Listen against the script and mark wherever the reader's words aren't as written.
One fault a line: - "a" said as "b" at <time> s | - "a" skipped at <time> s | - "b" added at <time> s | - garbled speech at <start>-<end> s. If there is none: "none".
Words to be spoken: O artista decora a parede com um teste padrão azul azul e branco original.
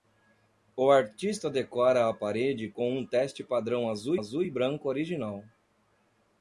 none